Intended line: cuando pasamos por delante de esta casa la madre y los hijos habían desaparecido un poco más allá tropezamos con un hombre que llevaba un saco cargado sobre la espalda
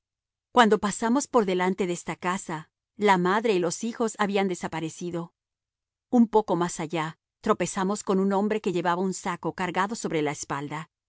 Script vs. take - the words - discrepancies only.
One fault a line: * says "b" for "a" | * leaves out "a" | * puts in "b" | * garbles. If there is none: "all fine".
all fine